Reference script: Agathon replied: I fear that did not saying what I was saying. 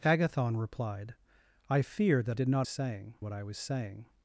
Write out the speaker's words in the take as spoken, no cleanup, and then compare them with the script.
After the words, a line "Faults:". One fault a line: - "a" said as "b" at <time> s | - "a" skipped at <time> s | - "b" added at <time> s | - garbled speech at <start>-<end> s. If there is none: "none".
Agathon replied: I fear that did not saying what I was saying.
Faults:
none